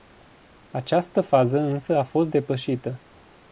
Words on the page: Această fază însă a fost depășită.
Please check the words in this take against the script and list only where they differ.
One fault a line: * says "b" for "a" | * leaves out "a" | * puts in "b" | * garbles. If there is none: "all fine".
all fine